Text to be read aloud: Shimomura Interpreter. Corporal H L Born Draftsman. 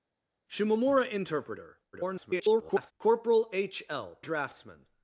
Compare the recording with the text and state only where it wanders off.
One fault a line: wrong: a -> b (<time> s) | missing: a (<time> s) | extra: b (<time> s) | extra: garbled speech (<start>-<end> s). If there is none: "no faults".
extra: garbled speech (1.9-2.9 s)
missing: Born (4.2 s)